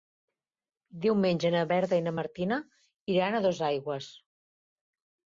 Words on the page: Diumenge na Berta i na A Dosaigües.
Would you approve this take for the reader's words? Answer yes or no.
no